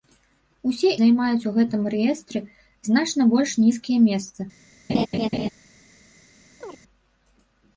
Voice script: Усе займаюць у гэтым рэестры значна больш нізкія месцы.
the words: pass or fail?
pass